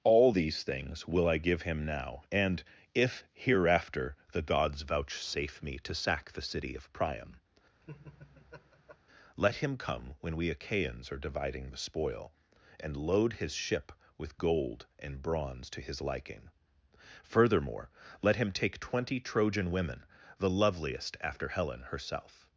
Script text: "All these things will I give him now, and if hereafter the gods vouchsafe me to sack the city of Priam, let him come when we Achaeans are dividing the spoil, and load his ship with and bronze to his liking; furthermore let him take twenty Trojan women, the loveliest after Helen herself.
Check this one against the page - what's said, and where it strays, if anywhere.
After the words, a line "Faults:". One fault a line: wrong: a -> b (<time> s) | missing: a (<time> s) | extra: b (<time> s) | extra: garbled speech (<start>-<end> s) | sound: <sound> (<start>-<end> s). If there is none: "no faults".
"All these things will I give him now, and if hereafter the gods vouchsafe me to sack the city of Priam, let him come when we Achaeans are dividing the spoil, and load his ship with gold and bronze to his liking; furthermore let him take twenty Trojan women, the loveliest after Helen herself.
Faults:
sound: laugh (7.8-9.0 s)
extra: gold (14.4 s)